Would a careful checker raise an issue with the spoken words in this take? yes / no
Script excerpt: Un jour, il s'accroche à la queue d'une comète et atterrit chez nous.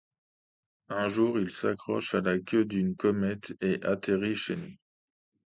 no